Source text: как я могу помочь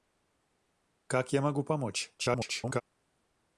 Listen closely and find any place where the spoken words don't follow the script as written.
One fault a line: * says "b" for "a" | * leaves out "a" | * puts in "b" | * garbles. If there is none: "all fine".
* garbles